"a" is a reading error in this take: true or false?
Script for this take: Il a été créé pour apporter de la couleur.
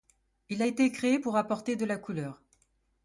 false